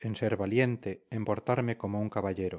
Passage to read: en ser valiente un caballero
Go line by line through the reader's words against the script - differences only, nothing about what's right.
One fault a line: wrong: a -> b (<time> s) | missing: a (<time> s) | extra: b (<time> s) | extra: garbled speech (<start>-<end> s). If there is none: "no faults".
extra: en portarme como (1.1 s)